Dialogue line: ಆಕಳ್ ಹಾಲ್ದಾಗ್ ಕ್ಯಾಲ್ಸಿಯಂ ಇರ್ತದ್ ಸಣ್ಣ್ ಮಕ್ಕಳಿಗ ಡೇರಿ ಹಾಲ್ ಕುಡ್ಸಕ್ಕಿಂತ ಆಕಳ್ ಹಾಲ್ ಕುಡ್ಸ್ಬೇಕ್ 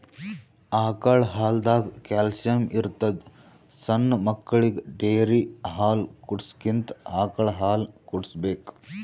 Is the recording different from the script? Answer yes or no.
no